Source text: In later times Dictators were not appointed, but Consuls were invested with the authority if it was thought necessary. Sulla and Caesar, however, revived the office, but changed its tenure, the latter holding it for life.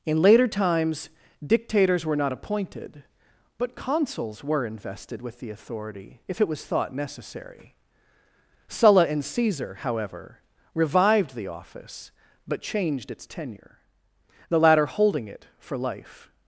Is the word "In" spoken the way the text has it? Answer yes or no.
yes